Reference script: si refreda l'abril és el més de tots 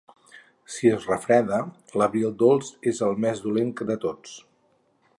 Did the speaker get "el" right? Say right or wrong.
right